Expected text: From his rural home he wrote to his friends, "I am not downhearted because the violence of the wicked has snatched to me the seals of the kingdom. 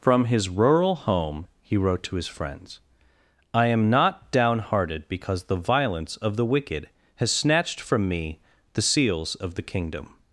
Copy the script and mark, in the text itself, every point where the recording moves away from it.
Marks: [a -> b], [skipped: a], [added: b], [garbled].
From his rural home he wrote to his friends, "I am not downhearted because the violence of the wicked has snatched [to -> from] me the seals of the kingdom.